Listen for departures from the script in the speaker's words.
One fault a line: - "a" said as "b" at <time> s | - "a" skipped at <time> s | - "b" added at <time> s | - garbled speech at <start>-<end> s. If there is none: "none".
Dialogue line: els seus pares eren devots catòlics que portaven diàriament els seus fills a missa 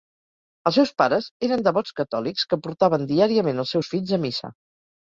none